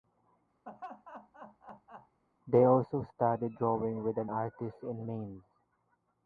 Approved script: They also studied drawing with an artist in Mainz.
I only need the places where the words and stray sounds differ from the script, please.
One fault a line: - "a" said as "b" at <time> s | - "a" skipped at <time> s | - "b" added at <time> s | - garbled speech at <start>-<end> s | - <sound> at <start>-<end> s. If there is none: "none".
- laugh at 0.7-2.2 s